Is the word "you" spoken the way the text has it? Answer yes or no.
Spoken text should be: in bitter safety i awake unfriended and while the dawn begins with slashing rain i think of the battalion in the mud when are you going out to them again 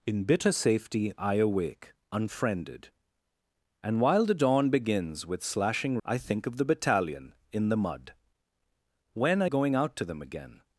no